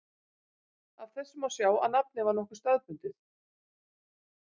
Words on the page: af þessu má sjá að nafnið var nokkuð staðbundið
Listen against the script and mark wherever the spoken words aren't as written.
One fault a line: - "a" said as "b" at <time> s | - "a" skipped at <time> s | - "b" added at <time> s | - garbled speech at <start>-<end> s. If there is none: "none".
none